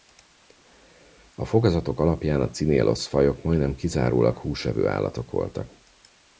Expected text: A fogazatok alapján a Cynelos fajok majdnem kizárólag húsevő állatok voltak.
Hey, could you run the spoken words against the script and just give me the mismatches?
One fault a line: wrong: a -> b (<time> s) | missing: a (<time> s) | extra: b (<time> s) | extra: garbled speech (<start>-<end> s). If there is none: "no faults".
no faults